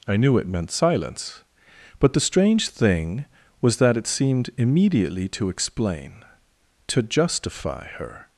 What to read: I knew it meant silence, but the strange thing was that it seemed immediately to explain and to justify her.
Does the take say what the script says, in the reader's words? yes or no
no